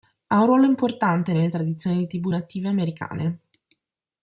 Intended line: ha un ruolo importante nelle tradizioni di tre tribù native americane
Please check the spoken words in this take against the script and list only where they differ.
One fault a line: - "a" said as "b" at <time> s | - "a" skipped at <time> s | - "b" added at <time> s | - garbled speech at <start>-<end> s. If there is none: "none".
- "tre" skipped at 2.1 s